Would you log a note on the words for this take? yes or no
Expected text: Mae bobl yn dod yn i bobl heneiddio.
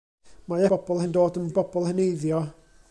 no